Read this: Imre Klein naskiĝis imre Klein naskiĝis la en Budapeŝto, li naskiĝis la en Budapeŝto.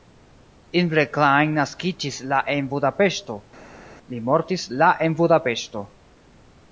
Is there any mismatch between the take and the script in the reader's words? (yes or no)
yes